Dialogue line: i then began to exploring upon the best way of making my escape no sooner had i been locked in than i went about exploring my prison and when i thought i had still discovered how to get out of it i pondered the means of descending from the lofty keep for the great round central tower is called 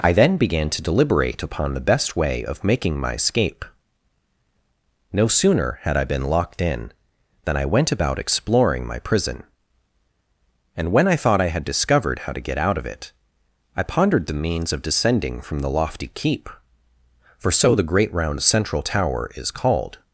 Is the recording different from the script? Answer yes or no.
yes